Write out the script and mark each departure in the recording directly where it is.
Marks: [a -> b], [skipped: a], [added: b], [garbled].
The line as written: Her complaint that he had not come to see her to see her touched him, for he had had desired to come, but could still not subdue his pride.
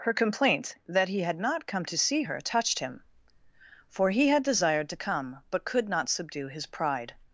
Her complaint that he had not come to see her [skipped: to see her] touched him, for he had [skipped: had] desired to come, but could [skipped: still] not subdue his pride.